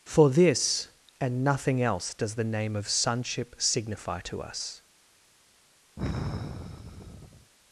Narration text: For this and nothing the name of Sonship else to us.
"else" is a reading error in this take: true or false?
true